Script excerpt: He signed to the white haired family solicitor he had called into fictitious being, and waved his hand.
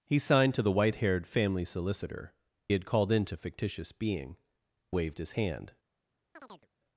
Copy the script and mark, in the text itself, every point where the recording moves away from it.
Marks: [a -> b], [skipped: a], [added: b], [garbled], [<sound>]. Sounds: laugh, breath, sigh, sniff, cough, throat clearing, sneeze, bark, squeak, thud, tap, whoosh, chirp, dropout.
He signed to the white haired family solicitor [skipped: he] had called into fictitious being, [skipped: and] waved his hand. [chirp]